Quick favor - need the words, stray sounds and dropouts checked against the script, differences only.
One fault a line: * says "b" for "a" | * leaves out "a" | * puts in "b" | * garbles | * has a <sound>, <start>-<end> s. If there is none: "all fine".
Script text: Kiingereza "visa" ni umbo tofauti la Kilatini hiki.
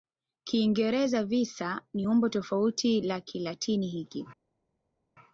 all fine